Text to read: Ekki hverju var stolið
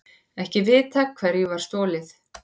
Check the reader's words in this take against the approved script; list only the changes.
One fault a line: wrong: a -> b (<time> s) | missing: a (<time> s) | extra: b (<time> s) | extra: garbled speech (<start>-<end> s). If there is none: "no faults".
extra: vitað (0.7 s)